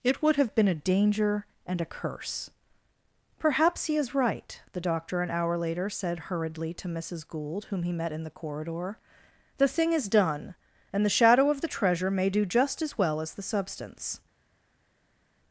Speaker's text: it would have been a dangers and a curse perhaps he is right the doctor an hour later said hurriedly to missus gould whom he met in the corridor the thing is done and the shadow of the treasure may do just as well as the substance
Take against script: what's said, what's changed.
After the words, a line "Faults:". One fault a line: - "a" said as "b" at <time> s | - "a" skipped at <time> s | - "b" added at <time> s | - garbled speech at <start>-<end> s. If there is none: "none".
it would have been a danger and a curse perhaps he is right the doctor an hour later said hurriedly to missus gould whom he met in the corridor the thing is done and the shadow of the treasure may do just as well as the substance
Faults:
- "dangers" said as "danger" at 0.8 s